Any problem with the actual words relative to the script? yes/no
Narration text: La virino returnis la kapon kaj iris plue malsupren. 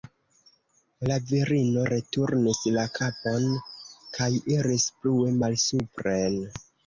no